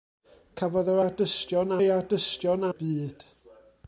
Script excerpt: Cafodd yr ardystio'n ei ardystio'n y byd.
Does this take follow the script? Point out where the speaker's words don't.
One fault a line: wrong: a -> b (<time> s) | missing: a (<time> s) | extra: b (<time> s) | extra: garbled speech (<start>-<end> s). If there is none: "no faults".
no faults